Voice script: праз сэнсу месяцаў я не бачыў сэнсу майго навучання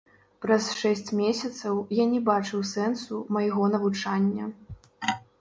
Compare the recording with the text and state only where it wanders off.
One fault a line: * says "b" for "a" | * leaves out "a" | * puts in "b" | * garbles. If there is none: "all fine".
* says "шэсць" for "сэнсу"